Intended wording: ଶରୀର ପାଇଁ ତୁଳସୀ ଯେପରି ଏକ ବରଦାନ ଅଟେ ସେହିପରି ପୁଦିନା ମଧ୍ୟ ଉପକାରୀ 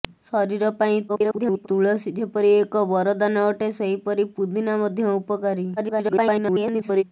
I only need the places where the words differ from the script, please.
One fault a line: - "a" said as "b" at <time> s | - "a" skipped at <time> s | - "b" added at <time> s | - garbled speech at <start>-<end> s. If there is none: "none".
- garbled speech at 1.1-1.7 s
- garbled speech at 5.8-7.0 s